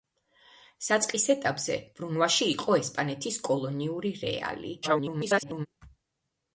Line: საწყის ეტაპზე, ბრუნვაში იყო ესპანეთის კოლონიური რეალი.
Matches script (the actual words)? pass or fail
fail